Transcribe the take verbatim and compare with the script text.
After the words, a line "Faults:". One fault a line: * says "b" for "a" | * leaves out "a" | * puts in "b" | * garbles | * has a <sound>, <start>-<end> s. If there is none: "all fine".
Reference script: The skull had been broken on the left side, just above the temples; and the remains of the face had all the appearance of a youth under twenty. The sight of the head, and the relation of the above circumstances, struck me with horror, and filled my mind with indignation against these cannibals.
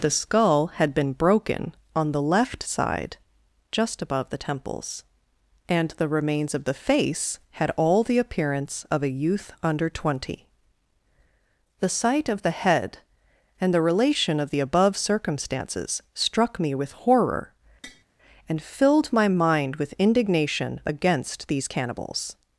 The skull had been broken on the left side, just above the temples; and the remains of the face had all the appearance of a youth under twenty. The sight of the head, and the relation of the above circumstances, struck me with horror, and filled my mind with indignation against these cannibals.
Faults:
* has a tap, 17.8-18.0 s